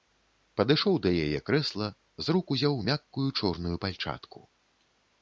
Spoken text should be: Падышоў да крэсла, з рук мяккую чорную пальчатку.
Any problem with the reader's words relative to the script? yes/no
yes